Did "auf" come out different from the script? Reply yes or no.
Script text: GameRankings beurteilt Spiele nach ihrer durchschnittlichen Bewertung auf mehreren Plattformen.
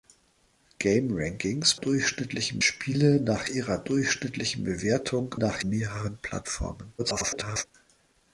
yes